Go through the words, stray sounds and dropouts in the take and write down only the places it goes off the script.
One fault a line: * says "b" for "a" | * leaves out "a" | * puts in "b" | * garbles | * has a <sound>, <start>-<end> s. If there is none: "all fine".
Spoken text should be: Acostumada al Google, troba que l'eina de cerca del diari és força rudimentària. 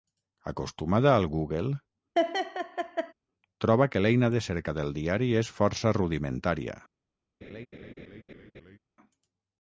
* has a laugh, 2.2-3.1 s
* has a laugh, 7.4-8.8 s